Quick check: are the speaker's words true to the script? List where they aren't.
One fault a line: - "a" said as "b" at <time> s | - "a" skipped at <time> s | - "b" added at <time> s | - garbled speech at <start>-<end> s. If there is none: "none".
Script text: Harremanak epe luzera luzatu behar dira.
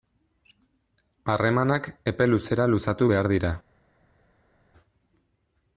none